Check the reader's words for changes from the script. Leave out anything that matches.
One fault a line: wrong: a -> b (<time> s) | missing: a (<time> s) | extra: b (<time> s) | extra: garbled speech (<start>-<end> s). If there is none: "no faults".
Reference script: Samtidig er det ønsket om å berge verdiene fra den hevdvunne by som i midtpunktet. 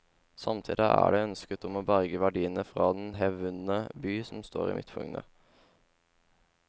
extra: står (4.4 s)